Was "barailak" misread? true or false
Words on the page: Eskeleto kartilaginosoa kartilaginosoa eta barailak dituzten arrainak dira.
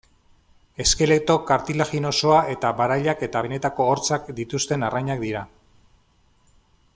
true